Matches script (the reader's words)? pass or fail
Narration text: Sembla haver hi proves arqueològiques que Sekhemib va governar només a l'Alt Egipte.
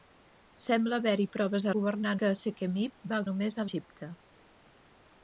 fail